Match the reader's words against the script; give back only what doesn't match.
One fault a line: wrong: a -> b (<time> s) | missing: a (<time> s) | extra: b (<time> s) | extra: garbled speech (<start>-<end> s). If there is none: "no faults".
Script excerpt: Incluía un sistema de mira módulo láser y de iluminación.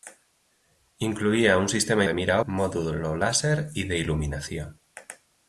no faults